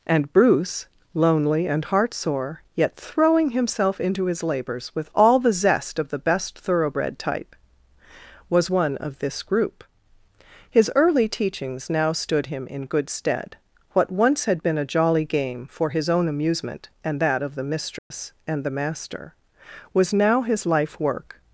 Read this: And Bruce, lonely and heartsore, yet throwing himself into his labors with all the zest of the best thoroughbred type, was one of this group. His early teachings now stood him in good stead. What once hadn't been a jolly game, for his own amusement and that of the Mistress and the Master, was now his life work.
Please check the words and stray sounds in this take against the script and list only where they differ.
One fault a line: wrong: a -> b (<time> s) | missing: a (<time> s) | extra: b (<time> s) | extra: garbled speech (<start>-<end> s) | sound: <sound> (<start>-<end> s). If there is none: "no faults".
wrong: hadn't -> had (14.4 s)
sound: dropout (18.0-18.1 s)